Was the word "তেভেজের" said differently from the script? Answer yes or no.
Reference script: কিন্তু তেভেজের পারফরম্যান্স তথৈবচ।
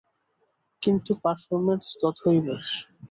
yes